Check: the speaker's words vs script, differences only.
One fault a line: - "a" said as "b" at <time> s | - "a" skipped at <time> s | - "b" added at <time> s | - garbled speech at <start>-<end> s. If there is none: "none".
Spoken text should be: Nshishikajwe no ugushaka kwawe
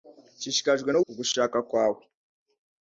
none